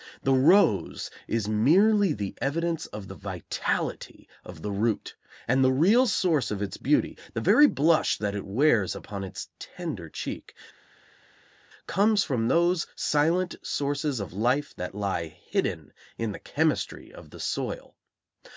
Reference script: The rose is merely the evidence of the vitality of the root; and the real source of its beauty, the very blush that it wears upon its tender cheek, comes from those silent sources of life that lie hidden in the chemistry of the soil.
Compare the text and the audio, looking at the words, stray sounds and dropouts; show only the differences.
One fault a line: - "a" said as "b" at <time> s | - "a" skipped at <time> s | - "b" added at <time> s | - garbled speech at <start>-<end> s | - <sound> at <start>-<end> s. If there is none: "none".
none